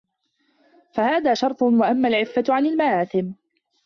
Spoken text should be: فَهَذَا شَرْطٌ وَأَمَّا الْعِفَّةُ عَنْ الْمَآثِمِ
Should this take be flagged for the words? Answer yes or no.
no